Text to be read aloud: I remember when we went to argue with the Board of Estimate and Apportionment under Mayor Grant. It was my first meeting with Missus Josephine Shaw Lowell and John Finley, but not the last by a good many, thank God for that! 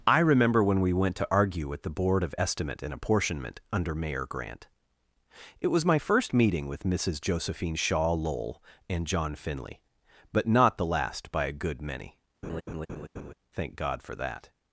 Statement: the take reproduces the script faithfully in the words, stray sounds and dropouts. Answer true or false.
false